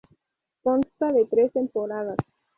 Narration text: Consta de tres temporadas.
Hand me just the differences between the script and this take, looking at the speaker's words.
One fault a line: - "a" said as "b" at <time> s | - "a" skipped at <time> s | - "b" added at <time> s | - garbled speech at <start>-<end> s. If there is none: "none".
none